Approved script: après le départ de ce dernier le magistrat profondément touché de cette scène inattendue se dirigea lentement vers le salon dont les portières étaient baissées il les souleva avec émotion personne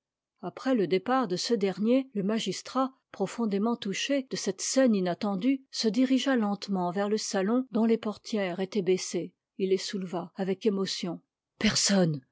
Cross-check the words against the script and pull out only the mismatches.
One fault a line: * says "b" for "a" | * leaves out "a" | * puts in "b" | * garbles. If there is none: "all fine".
all fine